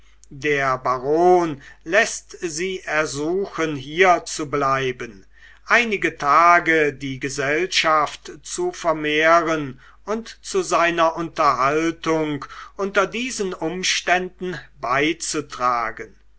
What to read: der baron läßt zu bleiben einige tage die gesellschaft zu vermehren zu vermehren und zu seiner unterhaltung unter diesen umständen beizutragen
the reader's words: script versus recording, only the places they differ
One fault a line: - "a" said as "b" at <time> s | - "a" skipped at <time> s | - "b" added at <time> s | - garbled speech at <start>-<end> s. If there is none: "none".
- "sie ersuchen hier" added at 2.4 s
- "zu vermehren" skipped at 9.8 s